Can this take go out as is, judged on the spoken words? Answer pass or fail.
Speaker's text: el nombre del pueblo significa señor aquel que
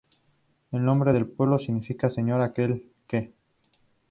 pass